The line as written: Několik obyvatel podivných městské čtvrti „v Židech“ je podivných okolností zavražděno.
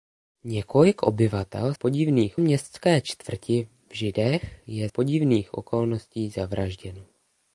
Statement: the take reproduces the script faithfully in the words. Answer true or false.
true